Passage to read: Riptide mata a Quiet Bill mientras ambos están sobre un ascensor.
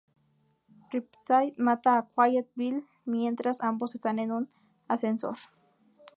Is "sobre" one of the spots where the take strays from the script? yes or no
yes